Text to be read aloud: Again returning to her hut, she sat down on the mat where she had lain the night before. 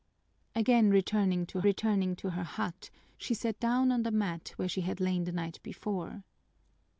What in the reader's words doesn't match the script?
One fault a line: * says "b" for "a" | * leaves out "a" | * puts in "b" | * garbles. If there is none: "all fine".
* puts in "returning to"